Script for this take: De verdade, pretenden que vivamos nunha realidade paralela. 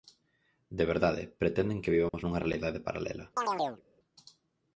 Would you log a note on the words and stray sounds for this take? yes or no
yes